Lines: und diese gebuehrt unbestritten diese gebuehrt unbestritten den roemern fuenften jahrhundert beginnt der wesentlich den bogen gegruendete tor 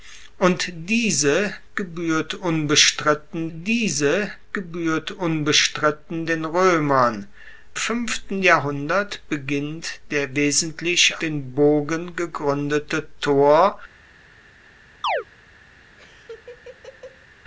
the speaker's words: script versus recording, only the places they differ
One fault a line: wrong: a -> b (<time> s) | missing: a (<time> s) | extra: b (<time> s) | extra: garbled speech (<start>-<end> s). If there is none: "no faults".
no faults